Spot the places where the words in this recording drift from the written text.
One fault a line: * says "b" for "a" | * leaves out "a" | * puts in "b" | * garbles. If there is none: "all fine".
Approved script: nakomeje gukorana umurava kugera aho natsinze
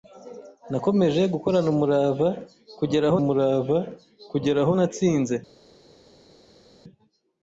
* puts in "umurava kugera aho"